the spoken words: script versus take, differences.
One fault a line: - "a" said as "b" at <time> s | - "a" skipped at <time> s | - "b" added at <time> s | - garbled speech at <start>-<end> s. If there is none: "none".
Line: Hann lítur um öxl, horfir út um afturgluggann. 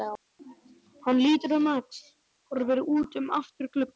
none